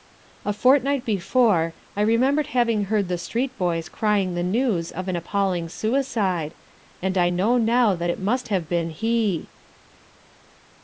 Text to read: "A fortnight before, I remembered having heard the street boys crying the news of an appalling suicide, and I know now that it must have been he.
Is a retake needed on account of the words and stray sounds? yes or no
no